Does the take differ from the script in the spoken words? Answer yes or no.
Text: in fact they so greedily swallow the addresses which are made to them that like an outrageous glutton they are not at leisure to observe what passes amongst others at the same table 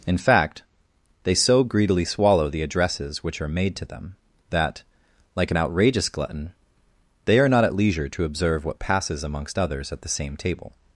no